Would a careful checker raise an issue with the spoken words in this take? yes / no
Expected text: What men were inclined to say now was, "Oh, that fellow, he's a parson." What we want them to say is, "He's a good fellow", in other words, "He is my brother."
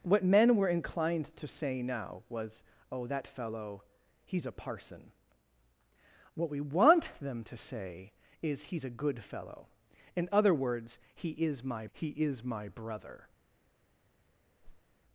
yes